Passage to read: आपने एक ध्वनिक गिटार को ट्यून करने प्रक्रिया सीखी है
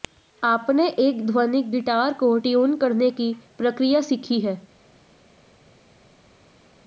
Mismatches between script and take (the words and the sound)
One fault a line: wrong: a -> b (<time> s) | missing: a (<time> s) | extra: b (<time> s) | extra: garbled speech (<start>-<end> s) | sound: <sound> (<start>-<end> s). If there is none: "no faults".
extra: की (3.1 s)